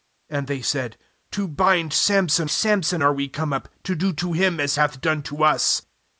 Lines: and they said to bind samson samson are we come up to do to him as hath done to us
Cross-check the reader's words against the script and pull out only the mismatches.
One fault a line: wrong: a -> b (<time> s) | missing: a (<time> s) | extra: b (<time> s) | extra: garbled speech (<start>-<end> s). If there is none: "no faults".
no faults